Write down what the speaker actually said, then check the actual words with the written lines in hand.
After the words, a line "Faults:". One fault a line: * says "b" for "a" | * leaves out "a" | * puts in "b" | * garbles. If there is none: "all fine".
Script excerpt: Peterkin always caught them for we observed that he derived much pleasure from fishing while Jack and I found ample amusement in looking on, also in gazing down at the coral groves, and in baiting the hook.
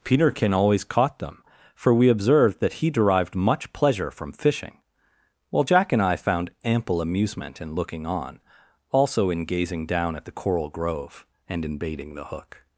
Peterkin always caught them for we observed that he derived much pleasure from fishing while Jack and I found ample amusement in looking on, also in gazing down at the coral grove, and in baiting the hook.
Faults:
* says "grove" for "groves"